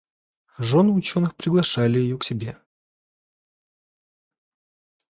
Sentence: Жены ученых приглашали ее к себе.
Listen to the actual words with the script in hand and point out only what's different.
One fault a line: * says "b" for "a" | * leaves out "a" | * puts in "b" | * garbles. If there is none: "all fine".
all fine